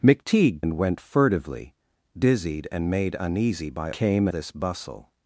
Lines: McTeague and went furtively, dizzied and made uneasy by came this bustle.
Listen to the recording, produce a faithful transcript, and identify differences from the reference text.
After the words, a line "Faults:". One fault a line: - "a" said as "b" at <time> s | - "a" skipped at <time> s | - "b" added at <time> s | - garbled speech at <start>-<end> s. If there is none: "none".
McTeague and went furtively, dizzied and made uneasy by came this bustle.
Faults:
none